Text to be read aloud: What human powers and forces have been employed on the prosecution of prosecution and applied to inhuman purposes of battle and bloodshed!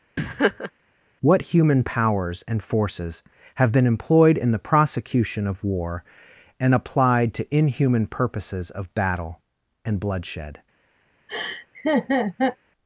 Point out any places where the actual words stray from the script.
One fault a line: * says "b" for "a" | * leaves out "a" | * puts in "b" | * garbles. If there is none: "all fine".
* says "in" for "on"
* says "war" for "prosecution"